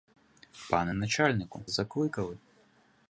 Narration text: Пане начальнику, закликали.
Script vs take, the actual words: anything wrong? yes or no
no